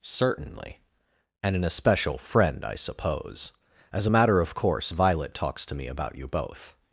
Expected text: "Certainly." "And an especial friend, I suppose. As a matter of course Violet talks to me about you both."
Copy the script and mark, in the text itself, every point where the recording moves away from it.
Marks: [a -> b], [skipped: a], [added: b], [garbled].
"Certainly." "And an especial friend, I suppose. As a matter of course Violet talks to me about you both."